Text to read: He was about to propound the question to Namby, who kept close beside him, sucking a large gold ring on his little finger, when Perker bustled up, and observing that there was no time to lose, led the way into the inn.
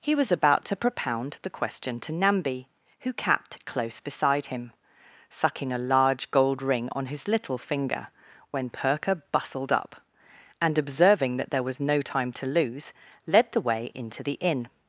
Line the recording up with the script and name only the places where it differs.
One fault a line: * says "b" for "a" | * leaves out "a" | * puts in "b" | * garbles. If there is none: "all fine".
* says "capped" for "kept"